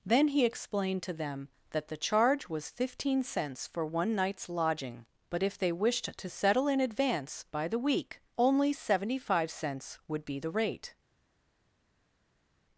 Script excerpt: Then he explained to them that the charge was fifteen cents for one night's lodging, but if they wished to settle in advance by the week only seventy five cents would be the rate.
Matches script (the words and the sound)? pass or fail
pass